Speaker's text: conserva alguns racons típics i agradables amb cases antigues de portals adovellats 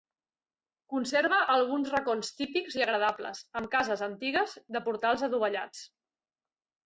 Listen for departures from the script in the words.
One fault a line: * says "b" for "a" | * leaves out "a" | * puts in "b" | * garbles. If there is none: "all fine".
all fine